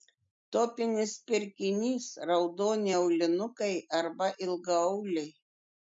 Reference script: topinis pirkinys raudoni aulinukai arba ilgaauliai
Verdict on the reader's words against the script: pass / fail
pass